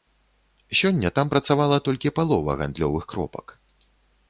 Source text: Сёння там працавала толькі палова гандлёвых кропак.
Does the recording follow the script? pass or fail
pass